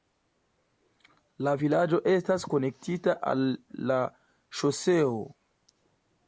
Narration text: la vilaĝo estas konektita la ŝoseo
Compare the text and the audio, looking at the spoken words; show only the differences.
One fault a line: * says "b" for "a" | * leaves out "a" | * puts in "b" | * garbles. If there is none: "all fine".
* puts in "al"